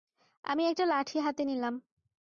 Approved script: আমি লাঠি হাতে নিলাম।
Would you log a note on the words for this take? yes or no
yes